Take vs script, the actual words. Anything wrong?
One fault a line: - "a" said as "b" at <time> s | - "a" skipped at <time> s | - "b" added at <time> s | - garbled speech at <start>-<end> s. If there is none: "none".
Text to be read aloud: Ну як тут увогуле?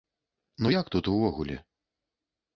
none